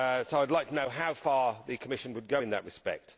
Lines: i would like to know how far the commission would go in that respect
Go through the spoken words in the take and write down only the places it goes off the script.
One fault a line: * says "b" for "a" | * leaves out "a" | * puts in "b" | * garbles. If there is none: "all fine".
all fine